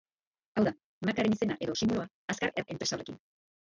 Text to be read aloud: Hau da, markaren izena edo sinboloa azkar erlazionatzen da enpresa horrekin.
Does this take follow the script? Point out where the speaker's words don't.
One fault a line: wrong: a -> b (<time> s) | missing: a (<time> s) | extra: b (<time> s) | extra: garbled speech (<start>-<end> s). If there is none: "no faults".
missing: erlazionatzen (2.6 s)